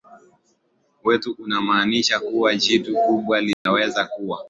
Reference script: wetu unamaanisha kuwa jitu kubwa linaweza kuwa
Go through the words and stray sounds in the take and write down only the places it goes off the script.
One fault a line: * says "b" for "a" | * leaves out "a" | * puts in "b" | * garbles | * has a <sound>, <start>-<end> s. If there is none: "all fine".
* has a dropout, 3.5-3.7 s